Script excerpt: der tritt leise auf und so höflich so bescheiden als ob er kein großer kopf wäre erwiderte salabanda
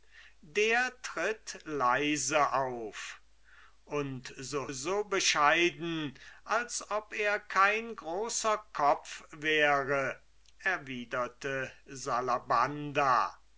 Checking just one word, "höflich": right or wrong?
wrong